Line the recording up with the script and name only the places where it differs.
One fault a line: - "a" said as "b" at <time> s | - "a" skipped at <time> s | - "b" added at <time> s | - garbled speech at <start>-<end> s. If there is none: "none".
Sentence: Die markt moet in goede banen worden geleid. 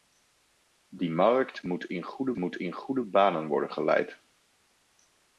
- "moet in goede" added at 2.3 s